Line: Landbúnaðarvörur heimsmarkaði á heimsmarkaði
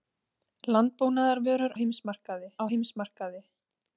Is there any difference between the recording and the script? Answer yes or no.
no